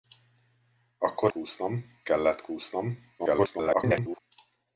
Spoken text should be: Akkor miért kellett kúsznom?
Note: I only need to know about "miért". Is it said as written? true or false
false